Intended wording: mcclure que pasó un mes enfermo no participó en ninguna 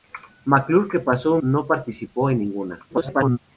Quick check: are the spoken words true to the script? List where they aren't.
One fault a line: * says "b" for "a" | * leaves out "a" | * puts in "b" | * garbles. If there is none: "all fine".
* leaves out "mes enfermo"
* garbles